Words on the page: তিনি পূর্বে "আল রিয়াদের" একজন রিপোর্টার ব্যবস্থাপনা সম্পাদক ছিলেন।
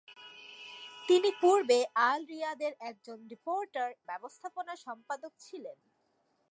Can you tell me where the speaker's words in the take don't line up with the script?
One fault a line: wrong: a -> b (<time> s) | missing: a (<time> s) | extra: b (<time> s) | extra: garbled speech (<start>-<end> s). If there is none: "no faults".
no faults